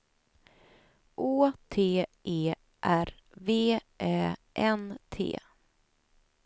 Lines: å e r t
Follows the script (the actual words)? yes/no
no